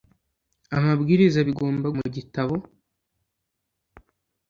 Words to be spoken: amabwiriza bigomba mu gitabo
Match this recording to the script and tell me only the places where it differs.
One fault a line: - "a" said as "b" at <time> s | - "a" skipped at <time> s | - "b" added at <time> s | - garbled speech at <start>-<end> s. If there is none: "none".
none